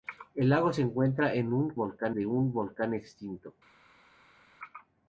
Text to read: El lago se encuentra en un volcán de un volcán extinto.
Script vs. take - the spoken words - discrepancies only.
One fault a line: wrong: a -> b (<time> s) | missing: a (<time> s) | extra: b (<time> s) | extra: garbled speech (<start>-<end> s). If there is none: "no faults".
no faults